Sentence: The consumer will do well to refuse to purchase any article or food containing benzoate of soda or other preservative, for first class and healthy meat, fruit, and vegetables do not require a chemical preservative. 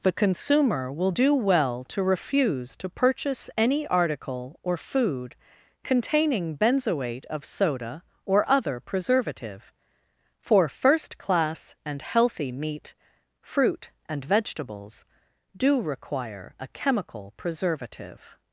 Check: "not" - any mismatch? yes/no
yes